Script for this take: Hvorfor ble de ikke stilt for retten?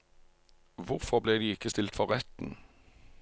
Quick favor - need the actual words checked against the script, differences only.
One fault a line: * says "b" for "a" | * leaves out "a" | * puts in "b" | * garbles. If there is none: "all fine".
all fine